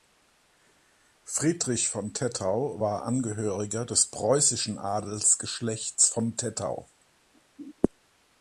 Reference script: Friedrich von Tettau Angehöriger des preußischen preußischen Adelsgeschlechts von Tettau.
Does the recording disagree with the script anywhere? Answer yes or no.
yes